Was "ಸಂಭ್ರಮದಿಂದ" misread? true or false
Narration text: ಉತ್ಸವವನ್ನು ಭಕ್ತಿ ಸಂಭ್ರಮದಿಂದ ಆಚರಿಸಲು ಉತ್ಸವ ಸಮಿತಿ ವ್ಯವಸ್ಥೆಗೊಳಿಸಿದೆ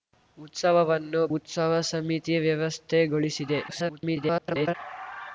true